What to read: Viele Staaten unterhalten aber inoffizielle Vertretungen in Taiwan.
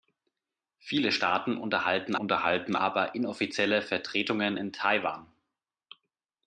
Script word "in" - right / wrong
right